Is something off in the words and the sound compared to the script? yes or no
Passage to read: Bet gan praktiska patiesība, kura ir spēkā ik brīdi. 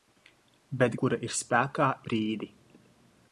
yes